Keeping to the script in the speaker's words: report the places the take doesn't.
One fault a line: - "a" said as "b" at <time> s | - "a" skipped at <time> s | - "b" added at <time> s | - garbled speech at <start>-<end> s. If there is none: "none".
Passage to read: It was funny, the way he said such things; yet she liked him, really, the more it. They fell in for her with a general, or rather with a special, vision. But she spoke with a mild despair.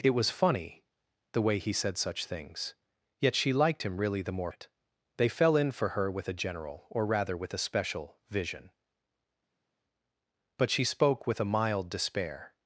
none